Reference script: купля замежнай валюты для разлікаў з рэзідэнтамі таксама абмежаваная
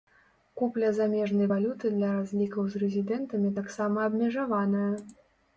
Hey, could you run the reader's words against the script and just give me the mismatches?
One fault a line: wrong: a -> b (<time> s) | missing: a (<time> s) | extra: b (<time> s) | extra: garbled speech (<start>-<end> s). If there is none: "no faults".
no faults